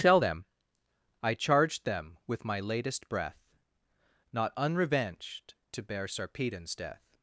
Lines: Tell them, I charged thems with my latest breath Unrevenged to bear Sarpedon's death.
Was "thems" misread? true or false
true